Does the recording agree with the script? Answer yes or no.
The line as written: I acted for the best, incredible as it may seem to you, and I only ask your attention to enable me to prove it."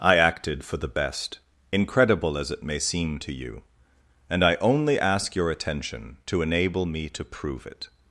yes